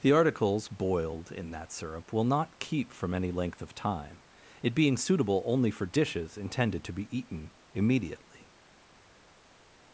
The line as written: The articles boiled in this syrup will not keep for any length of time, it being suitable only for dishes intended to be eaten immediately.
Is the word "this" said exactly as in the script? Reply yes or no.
no